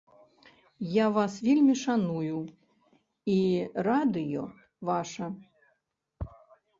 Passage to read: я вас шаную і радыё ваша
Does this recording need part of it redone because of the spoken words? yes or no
yes